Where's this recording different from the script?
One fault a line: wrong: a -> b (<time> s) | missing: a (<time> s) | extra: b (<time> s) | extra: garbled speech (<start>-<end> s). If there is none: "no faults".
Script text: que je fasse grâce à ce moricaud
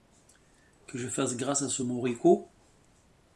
no faults